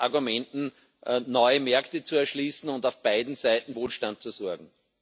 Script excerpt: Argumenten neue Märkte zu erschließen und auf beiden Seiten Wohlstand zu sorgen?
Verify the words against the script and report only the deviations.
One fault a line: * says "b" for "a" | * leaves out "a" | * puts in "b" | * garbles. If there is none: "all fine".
all fine